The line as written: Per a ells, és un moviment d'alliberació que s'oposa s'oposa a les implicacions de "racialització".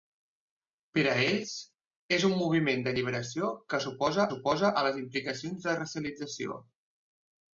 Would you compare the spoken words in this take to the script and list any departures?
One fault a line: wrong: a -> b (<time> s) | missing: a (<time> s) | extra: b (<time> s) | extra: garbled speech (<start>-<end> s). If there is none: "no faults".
no faults